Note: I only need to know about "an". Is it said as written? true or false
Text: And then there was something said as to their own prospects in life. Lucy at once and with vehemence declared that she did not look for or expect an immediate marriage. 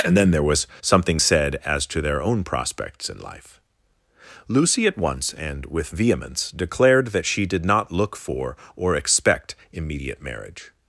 false